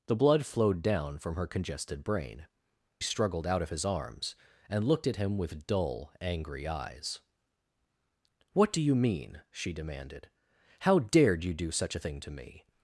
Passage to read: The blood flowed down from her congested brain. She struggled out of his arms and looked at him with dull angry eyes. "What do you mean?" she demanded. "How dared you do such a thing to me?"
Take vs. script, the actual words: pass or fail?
fail